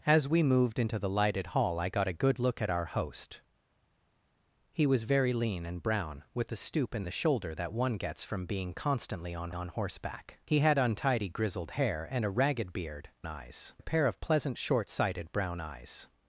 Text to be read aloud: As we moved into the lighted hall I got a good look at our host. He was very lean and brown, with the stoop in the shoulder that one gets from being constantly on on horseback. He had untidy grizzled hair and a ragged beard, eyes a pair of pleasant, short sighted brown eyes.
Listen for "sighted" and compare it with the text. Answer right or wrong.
right